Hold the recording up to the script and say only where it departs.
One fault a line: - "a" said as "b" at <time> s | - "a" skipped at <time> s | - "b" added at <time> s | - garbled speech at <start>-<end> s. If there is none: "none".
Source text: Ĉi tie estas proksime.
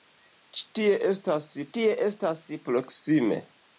- "tie estas" added at 1.8 s